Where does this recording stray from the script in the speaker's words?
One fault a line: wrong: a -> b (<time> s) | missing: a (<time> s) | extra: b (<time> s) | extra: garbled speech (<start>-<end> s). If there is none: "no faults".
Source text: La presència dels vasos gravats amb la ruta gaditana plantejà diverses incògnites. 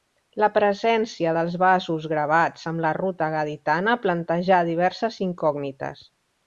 no faults